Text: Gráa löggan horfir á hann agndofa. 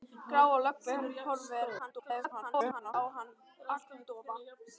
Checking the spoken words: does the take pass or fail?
fail